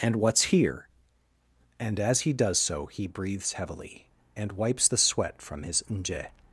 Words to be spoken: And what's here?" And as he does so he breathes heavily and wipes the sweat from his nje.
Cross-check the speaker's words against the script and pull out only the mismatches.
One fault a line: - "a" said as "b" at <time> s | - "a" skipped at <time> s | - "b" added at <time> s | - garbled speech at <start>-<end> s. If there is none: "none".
none